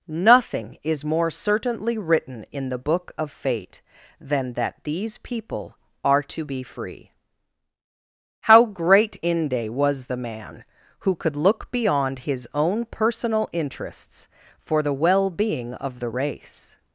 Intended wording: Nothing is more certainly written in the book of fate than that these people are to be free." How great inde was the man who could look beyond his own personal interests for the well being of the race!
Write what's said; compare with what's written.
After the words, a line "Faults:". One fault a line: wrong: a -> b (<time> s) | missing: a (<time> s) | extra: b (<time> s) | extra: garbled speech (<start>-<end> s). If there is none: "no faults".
Nothing is more certainly written in the book of fate than that these people are to be free." How great inde was the man who could look beyond his own personal interests for the well being of the race!
Faults:
no faults